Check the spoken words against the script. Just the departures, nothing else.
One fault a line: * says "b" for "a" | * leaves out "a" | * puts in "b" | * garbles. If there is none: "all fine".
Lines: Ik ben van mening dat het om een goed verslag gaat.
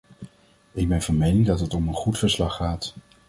all fine